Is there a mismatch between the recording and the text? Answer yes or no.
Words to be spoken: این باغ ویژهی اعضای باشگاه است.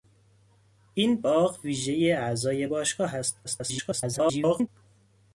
yes